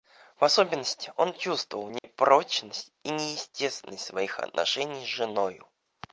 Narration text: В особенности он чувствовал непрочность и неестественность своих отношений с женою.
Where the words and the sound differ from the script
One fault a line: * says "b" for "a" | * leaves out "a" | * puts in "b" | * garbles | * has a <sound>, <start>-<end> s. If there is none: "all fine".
* has a dropout, 2.0-2.0 s